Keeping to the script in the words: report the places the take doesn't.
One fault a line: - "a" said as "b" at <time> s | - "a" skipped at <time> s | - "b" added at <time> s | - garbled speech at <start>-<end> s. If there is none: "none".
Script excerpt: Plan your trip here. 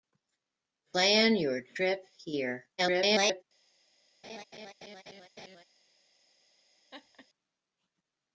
- garbled speech at 2.8-3.4 s